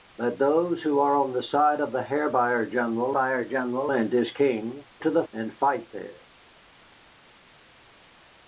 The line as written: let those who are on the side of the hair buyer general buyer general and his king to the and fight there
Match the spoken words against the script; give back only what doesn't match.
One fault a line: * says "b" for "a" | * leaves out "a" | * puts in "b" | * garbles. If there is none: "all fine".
all fine